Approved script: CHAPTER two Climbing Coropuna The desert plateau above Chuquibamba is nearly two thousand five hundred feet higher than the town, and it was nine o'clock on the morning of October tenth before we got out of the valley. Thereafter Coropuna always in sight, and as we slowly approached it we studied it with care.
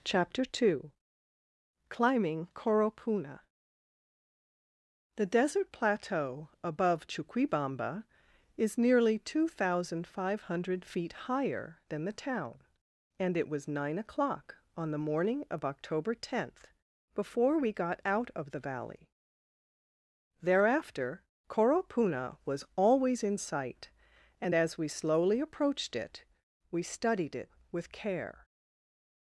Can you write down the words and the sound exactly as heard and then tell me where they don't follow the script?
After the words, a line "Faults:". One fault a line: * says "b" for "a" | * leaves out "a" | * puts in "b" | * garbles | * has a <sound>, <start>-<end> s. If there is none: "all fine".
CHAPTER two Climbing Coropuna The desert plateau above Chuquibamba is nearly two thousand five hundred feet higher than the town, and it was nine o'clock on the morning of October tenth before we got out of the valley. Thereafter Coropuna was always in sight, and as we slowly approached it we studied it with care.
Faults:
* puts in "was"